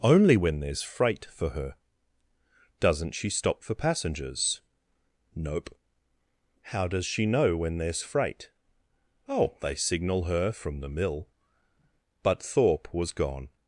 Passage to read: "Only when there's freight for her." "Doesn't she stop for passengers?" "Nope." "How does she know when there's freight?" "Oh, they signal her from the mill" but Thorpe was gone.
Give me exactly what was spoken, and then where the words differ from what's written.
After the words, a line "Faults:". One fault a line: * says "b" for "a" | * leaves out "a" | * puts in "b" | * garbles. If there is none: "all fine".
"Only when there's freight for her." "Doesn't she stop for passengers?" "Nope." "How does she know when there's freight?" "Oh, they signal her from the mill" but Thorpe was gone.
Faults:
all fine